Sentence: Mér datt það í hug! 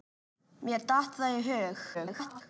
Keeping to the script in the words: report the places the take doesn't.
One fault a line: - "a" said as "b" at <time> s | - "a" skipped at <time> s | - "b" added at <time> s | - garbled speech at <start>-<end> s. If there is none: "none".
- garbled speech at 1.9-2.4 s